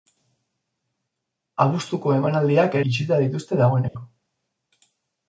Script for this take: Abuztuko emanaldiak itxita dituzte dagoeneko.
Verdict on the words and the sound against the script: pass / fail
fail